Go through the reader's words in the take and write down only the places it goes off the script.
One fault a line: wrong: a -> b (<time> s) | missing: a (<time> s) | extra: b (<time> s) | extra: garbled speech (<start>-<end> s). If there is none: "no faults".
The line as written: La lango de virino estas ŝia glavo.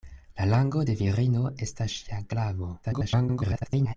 extra: garbled speech (2.8-4.0 s)